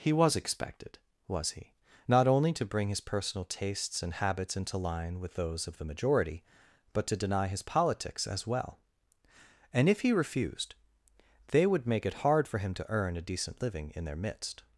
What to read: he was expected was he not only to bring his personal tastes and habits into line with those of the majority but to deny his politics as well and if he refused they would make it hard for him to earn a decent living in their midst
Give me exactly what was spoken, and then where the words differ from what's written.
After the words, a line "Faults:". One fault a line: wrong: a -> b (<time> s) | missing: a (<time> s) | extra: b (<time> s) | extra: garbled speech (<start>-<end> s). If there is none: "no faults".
he was expected was he not only to bring his personal tastes and habits into line with those of the majority but to deny his politics as well and if he refused they would make it hard for him to earn a decent living in their midst
Faults:
no faults